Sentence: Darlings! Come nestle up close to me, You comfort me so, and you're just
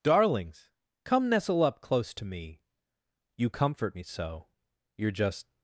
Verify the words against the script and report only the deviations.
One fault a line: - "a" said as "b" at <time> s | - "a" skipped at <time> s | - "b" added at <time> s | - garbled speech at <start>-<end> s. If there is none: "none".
- "and" skipped at 4.5 s